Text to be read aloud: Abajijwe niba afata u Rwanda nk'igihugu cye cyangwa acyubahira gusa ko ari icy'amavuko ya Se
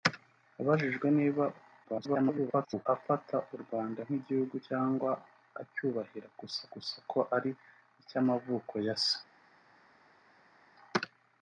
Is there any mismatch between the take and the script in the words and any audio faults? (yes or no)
yes